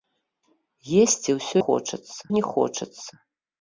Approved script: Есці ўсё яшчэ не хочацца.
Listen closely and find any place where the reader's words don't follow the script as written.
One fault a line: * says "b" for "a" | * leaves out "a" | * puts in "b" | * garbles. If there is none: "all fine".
* says "хочацца" for "яшчэ"